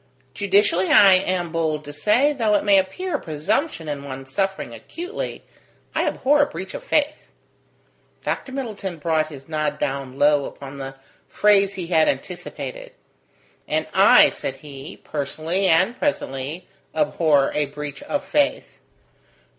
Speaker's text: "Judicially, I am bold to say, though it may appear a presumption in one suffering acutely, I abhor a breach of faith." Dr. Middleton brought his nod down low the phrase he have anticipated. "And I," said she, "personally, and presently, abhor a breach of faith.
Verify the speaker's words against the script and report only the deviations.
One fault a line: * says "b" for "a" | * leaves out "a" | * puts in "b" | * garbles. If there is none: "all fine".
* puts in "upon"
* says "had" for "have"
* says "he" for "she"